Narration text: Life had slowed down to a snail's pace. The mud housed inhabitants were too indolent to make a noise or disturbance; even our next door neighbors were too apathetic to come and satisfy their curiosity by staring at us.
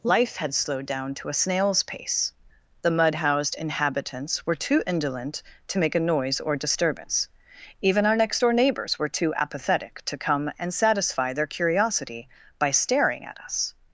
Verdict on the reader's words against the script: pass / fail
pass